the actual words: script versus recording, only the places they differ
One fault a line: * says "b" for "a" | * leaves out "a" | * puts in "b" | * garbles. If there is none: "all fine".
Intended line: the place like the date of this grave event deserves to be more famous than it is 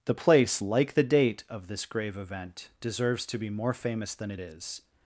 all fine